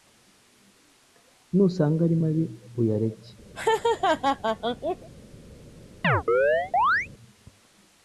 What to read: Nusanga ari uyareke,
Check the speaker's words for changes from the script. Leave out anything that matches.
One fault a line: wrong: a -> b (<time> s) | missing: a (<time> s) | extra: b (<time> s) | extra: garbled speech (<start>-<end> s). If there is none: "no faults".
extra: mabi (2.2 s)